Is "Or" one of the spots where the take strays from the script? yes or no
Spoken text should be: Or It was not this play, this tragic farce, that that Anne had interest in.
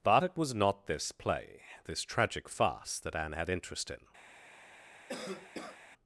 yes